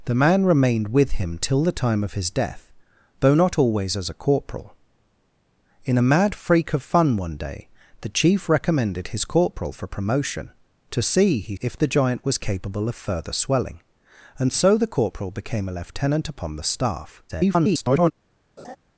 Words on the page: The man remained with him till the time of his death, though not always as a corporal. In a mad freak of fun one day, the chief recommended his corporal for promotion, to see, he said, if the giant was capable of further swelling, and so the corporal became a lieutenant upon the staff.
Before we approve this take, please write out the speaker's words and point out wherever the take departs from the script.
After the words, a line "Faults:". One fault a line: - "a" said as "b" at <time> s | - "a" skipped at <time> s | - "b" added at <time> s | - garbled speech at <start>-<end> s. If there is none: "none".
The man remained with him till the time of his death, though not always as a corporal. In a mad freak of fun one day, the chief recommended his corporal for promotion, to see, he if the giant was capable of further swelling, and so the corporal became a lieutenant upon the staff. [garbled]
Faults:
- "said" skipped at 11.6 s
- garbled speech at 17.3-18.1 s